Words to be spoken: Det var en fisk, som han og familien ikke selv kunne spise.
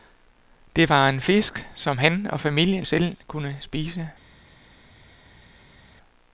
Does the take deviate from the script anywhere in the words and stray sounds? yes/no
yes